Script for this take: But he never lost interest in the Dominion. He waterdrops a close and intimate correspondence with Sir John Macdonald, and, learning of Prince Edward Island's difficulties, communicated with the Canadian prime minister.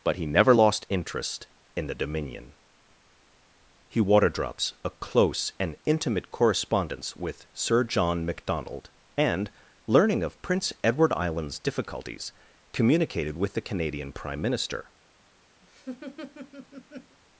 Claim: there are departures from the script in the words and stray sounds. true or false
true